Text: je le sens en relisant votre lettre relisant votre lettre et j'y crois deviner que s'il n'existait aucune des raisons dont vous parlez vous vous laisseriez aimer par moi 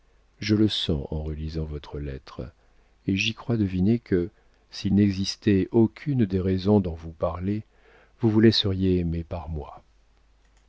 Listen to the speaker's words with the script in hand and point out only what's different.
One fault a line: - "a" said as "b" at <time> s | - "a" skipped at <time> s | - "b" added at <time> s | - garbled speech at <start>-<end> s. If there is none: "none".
- "relisant votre lettre" skipped at 2.5 s